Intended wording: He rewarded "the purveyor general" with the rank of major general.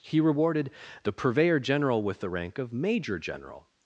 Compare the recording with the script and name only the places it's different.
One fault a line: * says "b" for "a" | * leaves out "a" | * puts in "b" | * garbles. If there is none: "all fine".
all fine